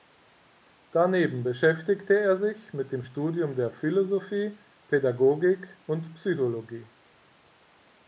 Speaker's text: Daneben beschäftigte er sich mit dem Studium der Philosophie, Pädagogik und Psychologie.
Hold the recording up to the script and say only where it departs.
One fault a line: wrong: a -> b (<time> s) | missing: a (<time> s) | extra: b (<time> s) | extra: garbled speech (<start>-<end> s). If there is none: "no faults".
no faults